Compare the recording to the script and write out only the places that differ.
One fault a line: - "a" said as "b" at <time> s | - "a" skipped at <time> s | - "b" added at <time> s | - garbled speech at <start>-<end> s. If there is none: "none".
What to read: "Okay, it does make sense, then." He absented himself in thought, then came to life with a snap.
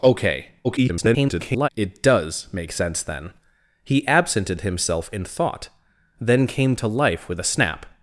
- garbled speech at 0.6-1.7 s